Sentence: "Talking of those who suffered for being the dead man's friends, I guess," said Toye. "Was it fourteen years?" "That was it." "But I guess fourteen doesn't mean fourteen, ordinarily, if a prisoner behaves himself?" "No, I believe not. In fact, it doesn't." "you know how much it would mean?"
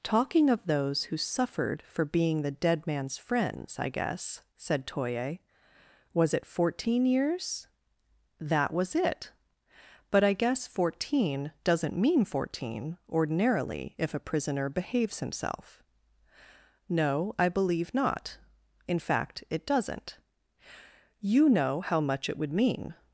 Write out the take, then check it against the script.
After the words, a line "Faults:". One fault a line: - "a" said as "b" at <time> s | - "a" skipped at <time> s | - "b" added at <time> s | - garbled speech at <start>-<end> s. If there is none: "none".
"Talking of those who suffered for being the dead man's friends, I guess," said Toye. "Was it fourteen years?" "That was it." "But I guess fourteen doesn't mean fourteen, ordinarily, if a prisoner behaves himself?" "No, I believe not. In fact, it doesn't." "you know how much it would mean?"
Faults:
none